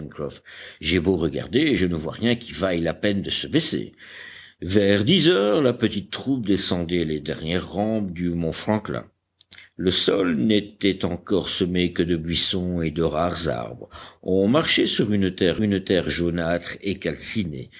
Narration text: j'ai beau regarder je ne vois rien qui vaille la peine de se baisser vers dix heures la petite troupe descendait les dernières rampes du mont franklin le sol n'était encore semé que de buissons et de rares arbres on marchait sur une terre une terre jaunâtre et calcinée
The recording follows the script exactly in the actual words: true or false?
true